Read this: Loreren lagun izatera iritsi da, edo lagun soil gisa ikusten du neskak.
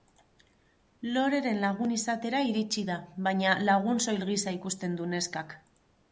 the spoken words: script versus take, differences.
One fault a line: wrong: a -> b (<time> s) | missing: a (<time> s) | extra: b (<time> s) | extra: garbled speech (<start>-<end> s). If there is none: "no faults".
wrong: edo -> baina (3.3 s)